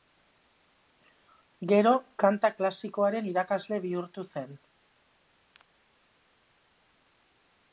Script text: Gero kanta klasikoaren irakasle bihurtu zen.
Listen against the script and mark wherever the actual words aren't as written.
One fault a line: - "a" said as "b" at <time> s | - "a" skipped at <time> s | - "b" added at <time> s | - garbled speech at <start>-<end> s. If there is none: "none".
none